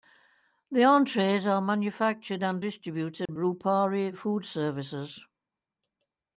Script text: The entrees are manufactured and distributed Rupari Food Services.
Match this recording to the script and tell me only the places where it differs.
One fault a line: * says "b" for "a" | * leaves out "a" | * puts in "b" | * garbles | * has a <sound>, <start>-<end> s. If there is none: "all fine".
* has a dropout, 3.3-3.3 s